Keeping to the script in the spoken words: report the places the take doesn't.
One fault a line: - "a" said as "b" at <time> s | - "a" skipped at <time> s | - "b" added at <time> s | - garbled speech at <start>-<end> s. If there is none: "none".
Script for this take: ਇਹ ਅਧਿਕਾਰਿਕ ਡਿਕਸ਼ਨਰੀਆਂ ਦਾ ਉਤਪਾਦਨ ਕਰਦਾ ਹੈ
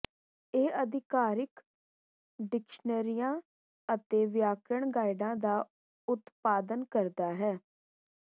- "ਅਤੇ ਵਿਆਕਰਣ ਗਾਈਡਾਂ" added at 3.9 s